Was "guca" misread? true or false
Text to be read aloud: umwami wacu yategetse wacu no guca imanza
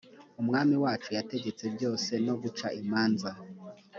false